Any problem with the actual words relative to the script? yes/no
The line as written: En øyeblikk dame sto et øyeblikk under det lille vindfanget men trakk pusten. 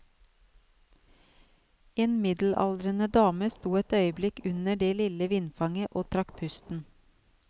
yes